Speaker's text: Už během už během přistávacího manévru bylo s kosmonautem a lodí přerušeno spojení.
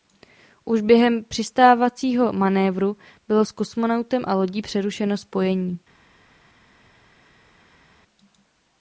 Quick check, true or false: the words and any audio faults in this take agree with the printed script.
false